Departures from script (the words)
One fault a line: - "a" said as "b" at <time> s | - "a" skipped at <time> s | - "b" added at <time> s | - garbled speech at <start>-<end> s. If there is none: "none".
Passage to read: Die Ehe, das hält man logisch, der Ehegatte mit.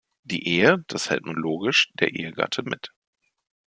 none